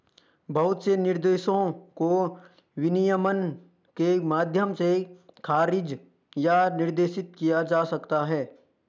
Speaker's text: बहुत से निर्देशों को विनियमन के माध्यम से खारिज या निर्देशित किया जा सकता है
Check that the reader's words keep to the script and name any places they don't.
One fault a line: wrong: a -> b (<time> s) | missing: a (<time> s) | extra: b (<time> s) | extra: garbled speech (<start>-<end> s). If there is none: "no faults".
no faults